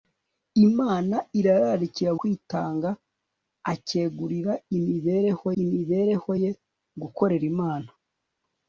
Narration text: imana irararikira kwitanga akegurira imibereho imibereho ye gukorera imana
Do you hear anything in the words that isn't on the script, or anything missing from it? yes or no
no